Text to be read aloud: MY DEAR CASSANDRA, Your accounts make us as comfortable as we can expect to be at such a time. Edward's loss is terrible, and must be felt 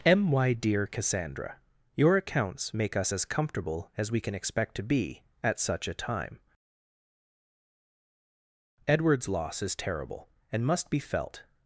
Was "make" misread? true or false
false